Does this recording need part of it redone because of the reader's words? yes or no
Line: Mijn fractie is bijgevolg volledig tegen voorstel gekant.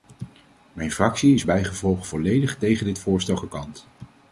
yes